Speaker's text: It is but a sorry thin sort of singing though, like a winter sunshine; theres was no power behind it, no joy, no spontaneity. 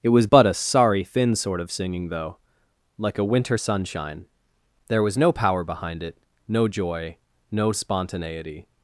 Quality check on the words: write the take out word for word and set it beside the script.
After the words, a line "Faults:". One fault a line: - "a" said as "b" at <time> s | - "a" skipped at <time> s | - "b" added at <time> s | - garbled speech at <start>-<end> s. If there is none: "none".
It was but a sorry thin sort of singing though, like a winter sunshine; there was no power behind it, no joy, no spontaneity.
Faults:
- "is" said as "was" at 0.1 s
- "theres" said as "there" at 4.9 s